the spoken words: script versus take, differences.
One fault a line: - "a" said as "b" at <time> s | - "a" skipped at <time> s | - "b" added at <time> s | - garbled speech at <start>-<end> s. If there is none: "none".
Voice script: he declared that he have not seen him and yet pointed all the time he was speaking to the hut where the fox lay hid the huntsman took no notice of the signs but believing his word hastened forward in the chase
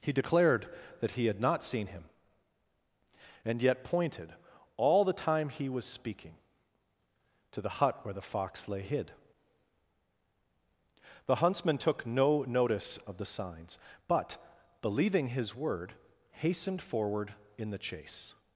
- "have" said as "had" at 1.3 s